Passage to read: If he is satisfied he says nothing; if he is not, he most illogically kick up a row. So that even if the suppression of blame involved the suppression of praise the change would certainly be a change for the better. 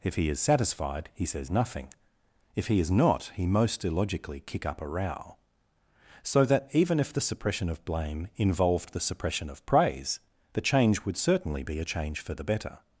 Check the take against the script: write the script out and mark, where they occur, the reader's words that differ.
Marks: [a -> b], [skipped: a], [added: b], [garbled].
If he is satisfied he says nothing; if he is not, he most illogically kick up a row. So that even if the suppression of blame involved the suppression of praise the change would certainly be a change for the better.